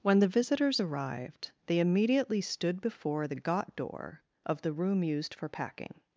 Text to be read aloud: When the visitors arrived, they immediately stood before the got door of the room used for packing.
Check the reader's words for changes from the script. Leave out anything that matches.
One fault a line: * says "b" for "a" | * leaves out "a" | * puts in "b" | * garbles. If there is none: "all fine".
all fine